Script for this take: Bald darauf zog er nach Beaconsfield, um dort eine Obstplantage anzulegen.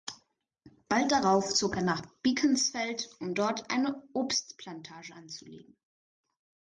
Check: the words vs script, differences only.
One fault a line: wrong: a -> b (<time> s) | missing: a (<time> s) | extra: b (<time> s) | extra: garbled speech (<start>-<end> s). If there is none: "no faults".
no faults